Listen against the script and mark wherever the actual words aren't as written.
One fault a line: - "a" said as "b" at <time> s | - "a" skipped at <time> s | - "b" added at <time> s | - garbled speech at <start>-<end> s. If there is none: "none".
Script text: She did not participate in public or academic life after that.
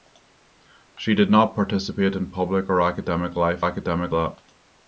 - "after" said as "academic" at 3.6 s